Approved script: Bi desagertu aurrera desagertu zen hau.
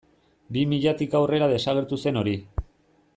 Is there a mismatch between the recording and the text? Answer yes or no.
yes